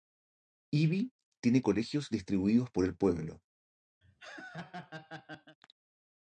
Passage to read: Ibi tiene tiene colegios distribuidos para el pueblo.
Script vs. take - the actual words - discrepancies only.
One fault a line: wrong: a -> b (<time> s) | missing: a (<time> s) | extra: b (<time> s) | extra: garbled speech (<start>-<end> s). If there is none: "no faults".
missing: tiene (1.6 s)
wrong: para -> por (2.7 s)